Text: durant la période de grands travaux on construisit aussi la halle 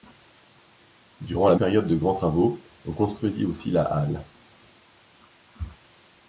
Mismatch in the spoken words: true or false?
false